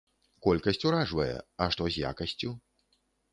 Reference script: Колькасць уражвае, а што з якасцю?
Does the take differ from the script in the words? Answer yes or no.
no